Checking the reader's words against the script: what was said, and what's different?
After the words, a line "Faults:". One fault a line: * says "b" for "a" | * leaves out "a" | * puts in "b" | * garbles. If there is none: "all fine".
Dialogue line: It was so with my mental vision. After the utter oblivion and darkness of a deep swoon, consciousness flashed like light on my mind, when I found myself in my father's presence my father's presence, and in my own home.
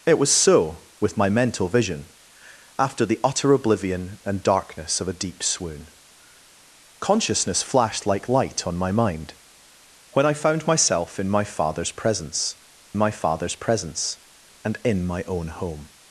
It was so with my mental vision. After the utter oblivion and darkness of a deep swoon, consciousness flashed like light on my mind, when I found myself in my father's presence my father's presence, and in my own home.
Faults:
all fine